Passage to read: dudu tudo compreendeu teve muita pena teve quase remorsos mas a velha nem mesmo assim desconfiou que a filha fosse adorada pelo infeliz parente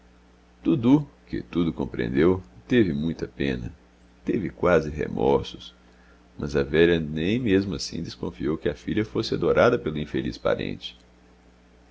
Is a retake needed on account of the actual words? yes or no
yes